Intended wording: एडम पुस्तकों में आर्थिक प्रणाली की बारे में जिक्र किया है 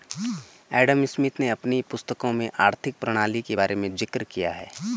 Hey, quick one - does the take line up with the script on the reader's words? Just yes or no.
no